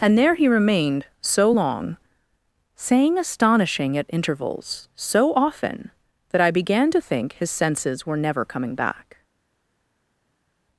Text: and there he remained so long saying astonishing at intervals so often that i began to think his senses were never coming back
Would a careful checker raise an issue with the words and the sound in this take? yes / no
no